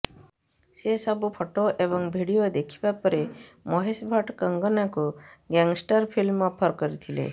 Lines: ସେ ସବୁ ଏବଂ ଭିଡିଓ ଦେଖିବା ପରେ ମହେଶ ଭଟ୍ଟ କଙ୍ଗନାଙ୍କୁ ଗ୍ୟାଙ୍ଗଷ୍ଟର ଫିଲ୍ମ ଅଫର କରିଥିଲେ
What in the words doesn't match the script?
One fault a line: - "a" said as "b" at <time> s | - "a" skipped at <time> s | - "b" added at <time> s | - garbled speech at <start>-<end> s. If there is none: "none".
- "ଫଟୋ" added at 1.3 s